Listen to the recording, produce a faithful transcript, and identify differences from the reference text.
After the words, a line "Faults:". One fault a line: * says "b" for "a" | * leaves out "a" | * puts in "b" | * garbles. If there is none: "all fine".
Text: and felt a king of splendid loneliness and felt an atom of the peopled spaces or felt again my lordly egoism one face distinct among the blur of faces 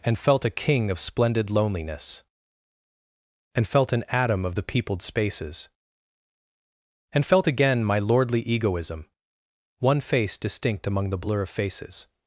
and felt a king of splendid loneliness and felt an atom of the peopled spaces and felt again my lordly egoism one face distinct among the blur of faces
Faults:
* says "and" for "or"